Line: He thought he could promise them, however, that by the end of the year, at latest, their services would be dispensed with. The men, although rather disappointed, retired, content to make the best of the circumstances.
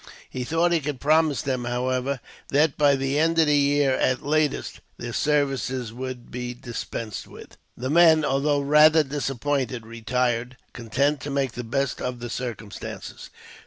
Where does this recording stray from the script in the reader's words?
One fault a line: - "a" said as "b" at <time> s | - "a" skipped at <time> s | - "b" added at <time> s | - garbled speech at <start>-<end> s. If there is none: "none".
none